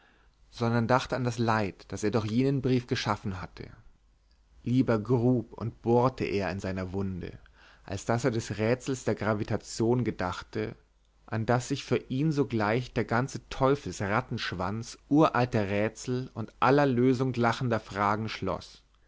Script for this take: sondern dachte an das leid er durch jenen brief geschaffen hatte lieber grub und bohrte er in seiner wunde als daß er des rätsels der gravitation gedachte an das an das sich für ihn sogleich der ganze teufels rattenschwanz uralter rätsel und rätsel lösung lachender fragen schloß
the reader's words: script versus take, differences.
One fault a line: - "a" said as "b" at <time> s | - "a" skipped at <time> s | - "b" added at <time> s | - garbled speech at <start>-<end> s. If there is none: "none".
- "das" added at 1.9 s
- "an das" skipped at 11.7 s
- "rätsel" said as "aller" at 16.6 s